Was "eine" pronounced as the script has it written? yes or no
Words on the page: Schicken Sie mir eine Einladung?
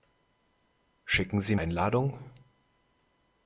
no